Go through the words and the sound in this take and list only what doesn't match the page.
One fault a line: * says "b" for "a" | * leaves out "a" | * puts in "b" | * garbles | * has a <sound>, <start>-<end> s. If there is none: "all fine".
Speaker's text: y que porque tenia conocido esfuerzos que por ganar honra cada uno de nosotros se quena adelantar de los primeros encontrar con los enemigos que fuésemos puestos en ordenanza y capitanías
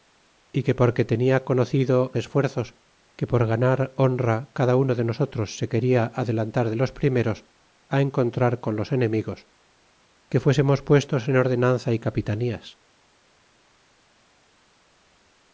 all fine